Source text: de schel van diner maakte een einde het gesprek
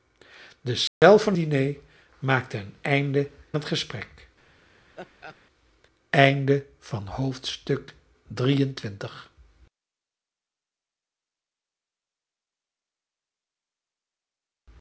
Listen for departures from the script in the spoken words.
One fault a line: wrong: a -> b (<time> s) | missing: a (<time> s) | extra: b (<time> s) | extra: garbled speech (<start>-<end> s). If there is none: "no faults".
no faults